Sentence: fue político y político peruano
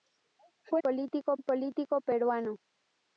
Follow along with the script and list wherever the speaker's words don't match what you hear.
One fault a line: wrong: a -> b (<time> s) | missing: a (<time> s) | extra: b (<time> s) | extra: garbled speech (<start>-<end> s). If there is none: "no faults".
no faults